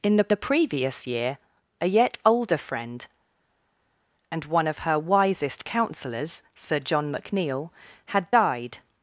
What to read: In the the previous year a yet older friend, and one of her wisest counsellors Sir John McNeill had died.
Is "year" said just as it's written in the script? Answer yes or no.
yes